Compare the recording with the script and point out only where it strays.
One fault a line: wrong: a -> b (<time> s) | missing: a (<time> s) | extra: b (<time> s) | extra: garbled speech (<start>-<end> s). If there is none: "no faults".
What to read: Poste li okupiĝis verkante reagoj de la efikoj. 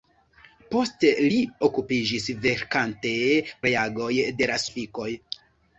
no faults